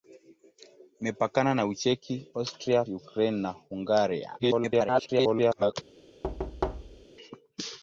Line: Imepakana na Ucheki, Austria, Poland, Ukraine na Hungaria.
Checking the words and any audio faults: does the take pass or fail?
fail